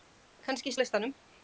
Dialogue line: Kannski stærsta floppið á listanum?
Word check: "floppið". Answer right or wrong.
wrong